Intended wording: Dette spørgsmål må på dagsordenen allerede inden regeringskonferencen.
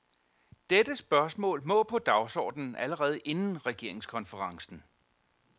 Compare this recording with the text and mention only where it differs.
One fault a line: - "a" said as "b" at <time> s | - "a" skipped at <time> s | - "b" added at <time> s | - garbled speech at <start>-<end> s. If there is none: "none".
none